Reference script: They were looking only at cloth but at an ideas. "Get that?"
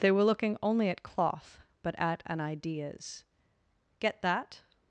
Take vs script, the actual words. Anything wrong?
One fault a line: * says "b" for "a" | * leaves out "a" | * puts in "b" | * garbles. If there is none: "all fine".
all fine